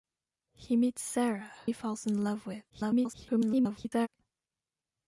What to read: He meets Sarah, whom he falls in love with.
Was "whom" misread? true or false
true